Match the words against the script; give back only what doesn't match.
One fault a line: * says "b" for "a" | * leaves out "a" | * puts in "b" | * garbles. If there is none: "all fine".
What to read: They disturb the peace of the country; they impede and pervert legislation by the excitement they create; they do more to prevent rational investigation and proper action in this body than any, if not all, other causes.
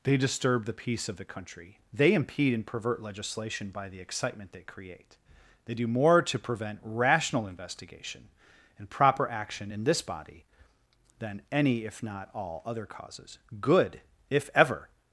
* puts in "Good if ever"